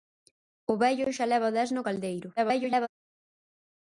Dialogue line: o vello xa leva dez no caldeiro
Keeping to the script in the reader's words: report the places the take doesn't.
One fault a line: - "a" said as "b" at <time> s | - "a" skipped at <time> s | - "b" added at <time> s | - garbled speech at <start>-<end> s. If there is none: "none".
- garbled speech at 2.4-2.9 s